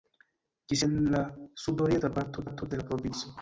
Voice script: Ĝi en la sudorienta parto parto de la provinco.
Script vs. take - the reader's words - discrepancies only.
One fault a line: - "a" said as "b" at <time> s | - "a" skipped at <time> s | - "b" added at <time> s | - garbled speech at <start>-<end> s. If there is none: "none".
none